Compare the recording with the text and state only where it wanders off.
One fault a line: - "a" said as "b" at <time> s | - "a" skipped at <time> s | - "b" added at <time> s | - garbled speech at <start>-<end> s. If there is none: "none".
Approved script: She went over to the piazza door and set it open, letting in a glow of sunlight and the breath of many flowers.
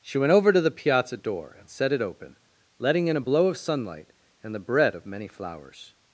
- "glow" said as "blow" at 3.2 s
- "breath" said as "bread" at 4.6 s